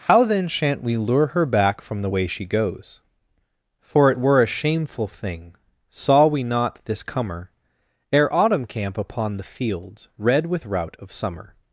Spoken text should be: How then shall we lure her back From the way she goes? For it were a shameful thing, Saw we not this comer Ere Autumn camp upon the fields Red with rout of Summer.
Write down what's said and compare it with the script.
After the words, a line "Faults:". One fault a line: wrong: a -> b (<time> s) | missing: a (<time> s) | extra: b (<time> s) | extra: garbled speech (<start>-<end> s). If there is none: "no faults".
How then shan't we lure her back From the way she goes? For it were a shameful thing, Saw we not this comer Ere Autumn camp upon the fields Red with rout of Summer.
Faults:
wrong: shall -> shan't (0.5 s)